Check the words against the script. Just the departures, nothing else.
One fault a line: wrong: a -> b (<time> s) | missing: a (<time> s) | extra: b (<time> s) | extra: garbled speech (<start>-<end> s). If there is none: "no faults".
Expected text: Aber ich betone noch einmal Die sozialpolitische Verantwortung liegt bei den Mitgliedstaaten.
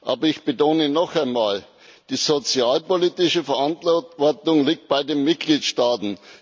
no faults